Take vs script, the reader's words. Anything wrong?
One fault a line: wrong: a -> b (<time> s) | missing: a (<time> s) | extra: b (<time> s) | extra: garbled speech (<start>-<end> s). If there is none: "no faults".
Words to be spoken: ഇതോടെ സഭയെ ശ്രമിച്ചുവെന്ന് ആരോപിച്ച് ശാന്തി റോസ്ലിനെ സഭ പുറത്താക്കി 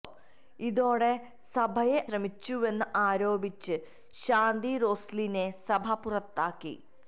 no faults